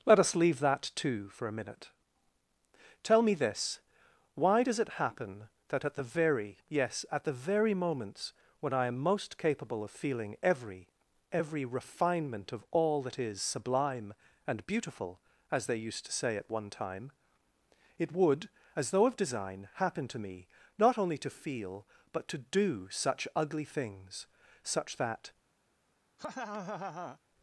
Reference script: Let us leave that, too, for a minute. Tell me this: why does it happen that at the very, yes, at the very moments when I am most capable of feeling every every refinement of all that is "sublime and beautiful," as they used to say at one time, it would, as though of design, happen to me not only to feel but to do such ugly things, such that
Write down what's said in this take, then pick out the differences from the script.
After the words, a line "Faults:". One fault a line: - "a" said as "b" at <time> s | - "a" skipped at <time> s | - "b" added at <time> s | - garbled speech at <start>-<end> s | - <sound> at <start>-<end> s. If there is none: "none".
Let us leave that, too, for a minute. Tell me this: why does it happen that at the very, yes, at the very moments when I am most capable of feeling every every refinement of all that is "sublime and beautiful," as they used to say at one time, it would, as though of design, happen to me not only to feel but to do such ugly things, such that
Faults:
- laugh at 26.2-27.2 s